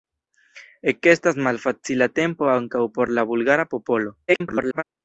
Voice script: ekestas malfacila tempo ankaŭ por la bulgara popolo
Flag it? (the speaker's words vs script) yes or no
yes